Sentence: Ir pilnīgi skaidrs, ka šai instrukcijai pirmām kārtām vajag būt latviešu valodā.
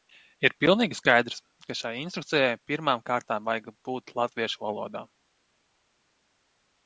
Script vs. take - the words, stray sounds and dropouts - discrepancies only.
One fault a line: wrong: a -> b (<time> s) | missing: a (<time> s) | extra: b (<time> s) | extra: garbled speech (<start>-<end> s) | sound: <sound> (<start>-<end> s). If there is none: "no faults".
no faults